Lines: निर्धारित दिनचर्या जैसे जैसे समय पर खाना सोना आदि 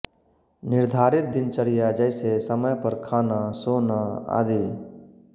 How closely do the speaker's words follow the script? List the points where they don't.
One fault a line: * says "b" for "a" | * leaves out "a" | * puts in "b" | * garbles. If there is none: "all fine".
* leaves out "जैसे"